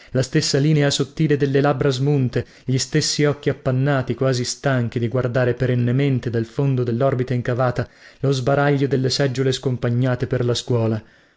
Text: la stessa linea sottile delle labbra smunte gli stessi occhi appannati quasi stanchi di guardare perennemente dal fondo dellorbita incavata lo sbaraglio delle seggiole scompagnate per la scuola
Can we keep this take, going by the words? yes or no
yes